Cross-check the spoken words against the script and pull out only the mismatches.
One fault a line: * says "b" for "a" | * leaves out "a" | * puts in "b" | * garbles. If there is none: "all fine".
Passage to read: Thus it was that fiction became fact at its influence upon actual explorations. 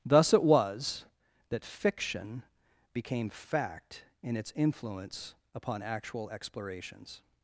* says "in" for "at"